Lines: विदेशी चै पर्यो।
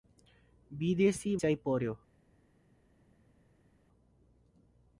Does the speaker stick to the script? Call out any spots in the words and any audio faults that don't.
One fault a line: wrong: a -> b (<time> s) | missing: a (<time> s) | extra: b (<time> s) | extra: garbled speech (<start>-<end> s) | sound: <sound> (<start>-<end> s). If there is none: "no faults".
no faults